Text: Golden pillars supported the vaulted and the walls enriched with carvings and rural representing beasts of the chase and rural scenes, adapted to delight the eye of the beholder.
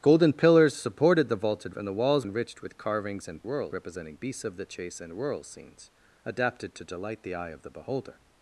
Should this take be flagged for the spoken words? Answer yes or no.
no